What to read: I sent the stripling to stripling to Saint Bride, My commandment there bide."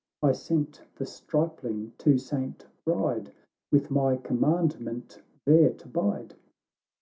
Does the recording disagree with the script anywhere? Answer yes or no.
yes